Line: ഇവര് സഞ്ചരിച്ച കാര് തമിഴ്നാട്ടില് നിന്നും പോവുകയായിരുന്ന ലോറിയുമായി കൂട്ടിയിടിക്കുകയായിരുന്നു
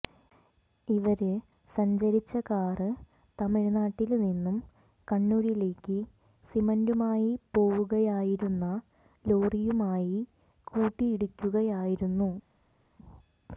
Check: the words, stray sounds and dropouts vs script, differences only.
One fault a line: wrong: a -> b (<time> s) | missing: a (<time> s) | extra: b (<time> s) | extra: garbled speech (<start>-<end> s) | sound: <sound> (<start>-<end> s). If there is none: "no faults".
extra: കണ്ണൂരിലേക്ക് സിമന്റുമായി (5.1 s)